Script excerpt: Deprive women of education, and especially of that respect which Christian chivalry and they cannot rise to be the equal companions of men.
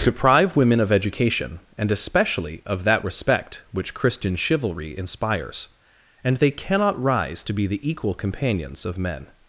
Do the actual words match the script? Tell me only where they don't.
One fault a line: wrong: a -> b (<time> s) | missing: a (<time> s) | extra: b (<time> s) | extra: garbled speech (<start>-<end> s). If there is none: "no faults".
extra: inspires (5.0 s)